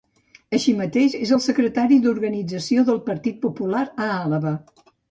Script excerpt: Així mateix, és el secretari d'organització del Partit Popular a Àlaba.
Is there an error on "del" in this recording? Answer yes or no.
no